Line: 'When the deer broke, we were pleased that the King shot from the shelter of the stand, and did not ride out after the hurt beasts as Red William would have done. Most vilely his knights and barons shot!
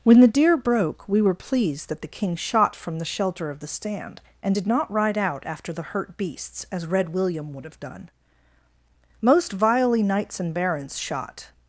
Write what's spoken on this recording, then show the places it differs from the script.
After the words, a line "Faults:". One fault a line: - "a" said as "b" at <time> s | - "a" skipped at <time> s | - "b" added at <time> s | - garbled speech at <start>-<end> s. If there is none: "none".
'When the deer broke, we were pleased that the King shot from the shelter of the stand, and did not ride out after the hurt beasts as Red William would have done. Most vilely knights and barons shot!
Faults:
- "his" skipped at 10.0 s